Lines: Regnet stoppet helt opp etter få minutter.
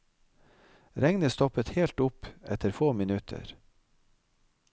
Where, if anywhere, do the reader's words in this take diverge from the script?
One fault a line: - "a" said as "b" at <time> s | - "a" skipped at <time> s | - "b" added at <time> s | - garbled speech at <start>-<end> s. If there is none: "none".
none